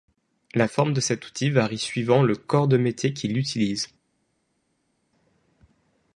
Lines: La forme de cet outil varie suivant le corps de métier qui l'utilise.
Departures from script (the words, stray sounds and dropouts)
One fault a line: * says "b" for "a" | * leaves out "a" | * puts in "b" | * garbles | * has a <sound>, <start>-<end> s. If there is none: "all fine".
all fine